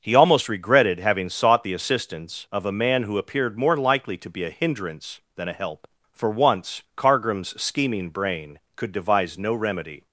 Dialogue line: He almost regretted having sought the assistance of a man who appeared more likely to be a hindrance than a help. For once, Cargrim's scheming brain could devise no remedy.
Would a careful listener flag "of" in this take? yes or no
no